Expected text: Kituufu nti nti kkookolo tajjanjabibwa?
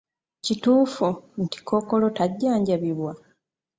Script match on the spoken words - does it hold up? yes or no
no